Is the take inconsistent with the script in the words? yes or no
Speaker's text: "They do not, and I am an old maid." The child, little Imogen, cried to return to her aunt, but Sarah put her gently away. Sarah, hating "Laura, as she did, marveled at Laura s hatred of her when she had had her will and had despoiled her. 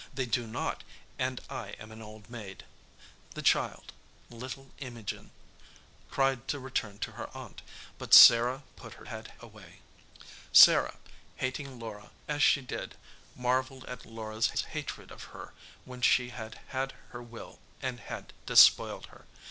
yes